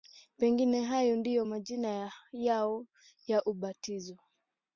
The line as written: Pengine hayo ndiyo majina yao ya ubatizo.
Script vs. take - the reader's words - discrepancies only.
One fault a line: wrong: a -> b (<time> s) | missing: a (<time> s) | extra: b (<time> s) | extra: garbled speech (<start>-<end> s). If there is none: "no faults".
no faults